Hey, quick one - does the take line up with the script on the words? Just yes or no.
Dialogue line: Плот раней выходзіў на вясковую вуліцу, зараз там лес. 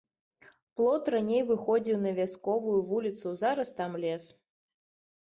yes